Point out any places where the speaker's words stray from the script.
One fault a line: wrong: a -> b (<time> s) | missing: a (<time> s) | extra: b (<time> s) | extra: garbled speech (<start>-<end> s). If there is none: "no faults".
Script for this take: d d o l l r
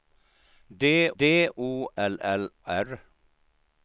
no faults